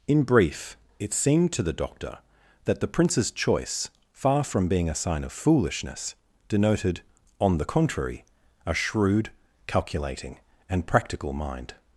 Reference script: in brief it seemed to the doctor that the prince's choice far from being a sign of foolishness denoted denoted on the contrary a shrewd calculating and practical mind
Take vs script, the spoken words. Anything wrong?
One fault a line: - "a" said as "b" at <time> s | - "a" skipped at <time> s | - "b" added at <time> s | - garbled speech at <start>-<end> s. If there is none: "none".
- "denoted" skipped at 7.0 s